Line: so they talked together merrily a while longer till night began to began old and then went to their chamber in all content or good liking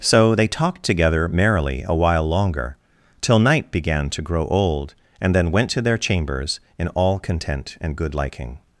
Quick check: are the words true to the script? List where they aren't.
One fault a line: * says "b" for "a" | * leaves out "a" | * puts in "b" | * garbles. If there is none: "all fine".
* says "grow" for "began"
* says "chambers" for "chamber"
* says "and" for "or"